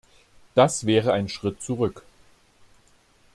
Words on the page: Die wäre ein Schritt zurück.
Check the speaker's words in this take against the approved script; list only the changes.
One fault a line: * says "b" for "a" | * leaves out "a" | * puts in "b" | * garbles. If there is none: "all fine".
* says "Das" for "Die"